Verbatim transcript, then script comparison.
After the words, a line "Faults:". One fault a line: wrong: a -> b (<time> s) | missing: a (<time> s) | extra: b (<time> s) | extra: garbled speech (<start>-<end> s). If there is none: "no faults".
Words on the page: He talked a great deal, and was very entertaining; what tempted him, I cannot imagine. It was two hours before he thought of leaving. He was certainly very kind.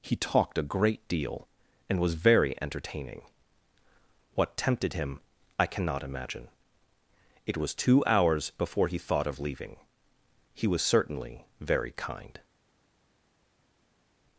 He talked a great deal, and was very entertaining; what tempted him, I cannot imagine. It was two hours before he thought of leaving. He was certainly very kind.
Faults:
no faults